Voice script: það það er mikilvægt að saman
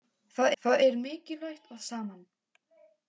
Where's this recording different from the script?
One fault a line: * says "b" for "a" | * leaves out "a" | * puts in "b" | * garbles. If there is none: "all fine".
all fine